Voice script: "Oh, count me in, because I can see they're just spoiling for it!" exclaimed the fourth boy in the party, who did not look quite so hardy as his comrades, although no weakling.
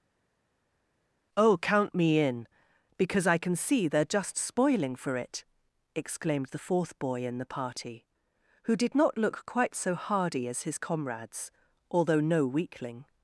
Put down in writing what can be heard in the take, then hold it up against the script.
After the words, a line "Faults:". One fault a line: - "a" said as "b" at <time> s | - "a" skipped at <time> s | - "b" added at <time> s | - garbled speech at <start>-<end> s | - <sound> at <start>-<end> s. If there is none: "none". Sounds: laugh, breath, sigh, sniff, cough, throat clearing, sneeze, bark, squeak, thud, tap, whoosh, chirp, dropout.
"Oh, count me in, because I can see they're just spoiling for it!" exclaimed the fourth boy in the party, who did not look quite so hardy as his comrades, although no weakling.
Faults:
none